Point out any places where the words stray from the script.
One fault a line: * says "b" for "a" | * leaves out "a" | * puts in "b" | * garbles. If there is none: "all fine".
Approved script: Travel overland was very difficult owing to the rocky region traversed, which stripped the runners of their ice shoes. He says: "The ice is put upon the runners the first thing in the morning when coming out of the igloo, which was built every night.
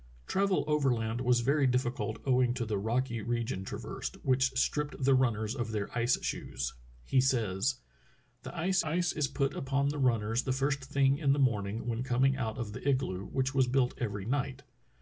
* puts in "ice"